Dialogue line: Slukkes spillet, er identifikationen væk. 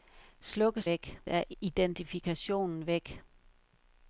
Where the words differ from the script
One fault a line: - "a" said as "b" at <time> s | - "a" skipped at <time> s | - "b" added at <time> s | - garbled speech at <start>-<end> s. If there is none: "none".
- "spillet" said as "væk" at 0.8 s